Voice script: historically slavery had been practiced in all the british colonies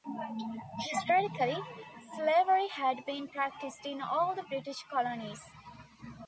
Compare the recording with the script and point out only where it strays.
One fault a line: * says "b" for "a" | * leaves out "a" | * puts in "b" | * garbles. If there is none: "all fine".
all fine